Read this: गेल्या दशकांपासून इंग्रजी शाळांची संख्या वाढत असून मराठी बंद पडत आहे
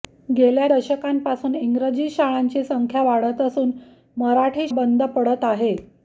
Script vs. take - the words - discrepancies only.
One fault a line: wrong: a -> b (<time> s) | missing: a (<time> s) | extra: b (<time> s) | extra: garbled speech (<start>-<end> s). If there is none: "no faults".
no faults